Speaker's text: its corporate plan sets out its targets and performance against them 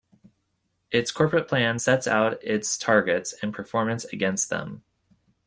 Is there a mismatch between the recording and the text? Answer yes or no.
no